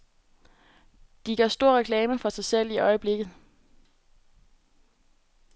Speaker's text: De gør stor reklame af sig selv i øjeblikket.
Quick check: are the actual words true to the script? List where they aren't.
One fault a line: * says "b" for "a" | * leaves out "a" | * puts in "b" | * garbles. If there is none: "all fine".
* says "for" for "af"